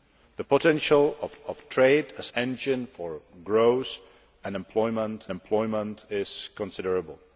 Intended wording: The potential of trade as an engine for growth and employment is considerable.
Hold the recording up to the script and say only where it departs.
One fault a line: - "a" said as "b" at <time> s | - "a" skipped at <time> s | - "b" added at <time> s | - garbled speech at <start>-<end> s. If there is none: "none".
- "of" added at 1.5 s
- "an" skipped at 2.3 s
- "employment" added at 5.3 s